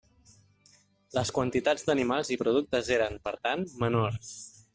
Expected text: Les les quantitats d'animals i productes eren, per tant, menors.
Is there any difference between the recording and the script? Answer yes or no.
yes